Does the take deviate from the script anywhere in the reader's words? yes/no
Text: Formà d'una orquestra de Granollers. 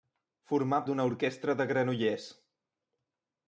no